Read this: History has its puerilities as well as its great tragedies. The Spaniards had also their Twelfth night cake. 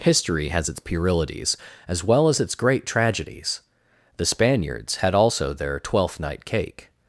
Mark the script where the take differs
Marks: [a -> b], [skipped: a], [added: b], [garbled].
History has its puerilities as well as its great tragedies. The Spaniards had also their Twelfth night cake.